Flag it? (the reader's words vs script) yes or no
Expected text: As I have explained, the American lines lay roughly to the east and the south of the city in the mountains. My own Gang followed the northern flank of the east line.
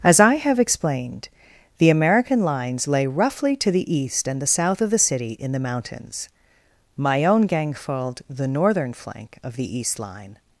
no